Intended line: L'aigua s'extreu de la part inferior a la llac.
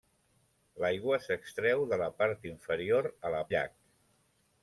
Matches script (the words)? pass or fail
pass